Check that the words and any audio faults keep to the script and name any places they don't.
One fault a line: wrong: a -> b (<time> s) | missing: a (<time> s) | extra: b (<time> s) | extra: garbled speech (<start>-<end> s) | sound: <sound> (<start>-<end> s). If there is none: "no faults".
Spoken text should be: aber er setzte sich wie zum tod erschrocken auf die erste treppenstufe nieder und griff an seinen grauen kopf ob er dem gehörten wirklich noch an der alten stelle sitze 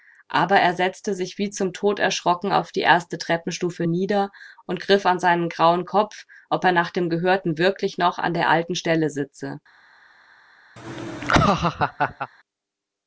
extra: nach (6.7 s)
sound: laugh (10.8-12.3 s)